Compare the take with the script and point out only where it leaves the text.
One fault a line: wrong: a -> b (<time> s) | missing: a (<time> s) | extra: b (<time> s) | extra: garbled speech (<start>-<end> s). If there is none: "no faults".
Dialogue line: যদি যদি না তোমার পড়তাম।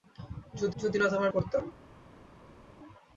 no faults